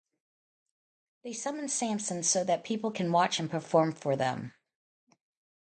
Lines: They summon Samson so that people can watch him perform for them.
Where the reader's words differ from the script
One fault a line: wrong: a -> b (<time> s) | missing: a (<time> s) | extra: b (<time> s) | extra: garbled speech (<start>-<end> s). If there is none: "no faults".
no faults